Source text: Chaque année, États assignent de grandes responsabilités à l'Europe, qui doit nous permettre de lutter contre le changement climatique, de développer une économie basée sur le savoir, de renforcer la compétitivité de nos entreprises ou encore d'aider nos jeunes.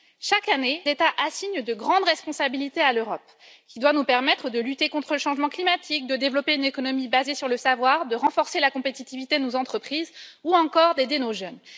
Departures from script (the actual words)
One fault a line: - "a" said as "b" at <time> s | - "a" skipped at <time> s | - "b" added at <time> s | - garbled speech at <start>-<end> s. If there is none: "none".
none